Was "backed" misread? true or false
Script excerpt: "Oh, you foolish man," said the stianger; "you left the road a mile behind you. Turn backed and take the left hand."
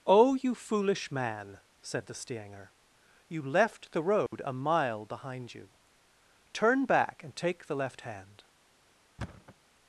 true